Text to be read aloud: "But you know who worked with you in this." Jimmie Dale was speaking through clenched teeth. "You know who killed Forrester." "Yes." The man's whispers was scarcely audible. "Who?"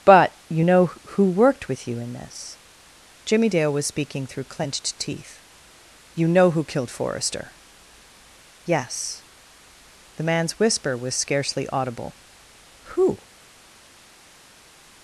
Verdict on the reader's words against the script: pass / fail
fail